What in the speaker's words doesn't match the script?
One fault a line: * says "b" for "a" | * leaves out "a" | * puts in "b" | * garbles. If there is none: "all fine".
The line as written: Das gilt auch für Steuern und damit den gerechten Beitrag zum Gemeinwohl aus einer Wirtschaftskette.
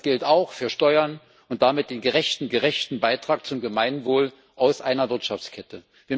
* puts in "gerechten"